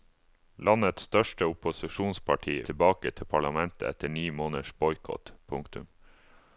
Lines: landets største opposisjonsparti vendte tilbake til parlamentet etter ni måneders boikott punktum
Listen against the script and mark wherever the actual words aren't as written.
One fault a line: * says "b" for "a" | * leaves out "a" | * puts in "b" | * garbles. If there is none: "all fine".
* leaves out "vendte"